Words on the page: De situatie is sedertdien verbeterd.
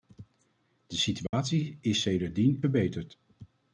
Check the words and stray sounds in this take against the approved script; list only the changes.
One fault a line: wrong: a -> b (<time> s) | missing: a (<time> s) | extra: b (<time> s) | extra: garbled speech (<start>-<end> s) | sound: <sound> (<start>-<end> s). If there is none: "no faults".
sound: dropout (1.3-1.3 s)